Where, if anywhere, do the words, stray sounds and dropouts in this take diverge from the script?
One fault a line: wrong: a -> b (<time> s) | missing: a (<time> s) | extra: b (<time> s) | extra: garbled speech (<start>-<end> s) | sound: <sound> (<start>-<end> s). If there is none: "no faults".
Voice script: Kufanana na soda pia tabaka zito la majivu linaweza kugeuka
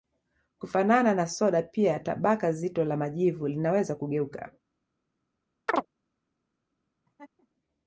sound: chirp (5.7-5.9 s)
sound: laugh (7.1-7.5 s)